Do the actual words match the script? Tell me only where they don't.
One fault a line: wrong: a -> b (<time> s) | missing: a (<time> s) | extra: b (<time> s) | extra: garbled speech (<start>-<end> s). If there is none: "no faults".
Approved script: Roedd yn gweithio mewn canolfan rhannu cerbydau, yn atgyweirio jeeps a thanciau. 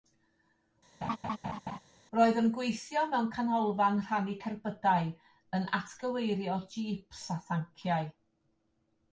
no faults